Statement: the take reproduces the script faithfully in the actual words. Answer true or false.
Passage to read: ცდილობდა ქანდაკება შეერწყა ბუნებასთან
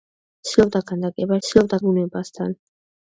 false